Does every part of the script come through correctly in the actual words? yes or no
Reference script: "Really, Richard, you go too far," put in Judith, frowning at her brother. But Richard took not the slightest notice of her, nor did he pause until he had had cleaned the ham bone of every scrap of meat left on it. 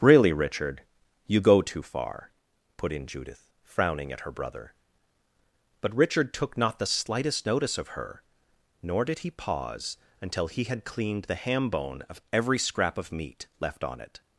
no